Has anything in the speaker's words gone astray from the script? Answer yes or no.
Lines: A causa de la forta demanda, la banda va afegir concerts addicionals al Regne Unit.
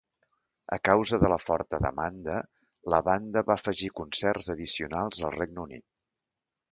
no